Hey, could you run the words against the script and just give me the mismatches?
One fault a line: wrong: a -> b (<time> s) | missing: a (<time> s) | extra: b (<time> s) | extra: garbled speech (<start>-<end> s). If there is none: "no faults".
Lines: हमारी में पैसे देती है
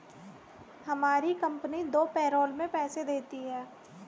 extra: कंपनी दो पैरोल (1.4 s)